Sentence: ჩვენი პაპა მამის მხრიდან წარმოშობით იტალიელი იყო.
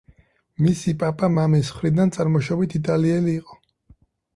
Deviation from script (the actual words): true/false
true